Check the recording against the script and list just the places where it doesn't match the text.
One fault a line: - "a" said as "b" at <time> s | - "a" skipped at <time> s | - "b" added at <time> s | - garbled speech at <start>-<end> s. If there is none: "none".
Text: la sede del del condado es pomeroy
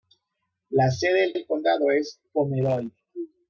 none